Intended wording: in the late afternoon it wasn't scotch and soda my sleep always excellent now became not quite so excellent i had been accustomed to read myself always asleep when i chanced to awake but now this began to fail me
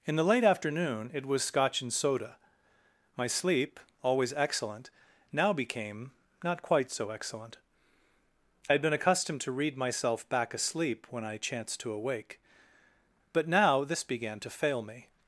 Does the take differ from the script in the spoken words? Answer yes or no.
yes